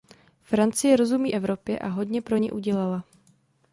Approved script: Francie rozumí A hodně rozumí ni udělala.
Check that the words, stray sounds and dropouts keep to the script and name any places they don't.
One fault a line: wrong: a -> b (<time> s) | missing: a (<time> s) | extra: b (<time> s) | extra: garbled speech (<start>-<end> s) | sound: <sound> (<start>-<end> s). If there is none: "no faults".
extra: Evropě (1.3 s)
wrong: rozumí -> pro (2.2 s)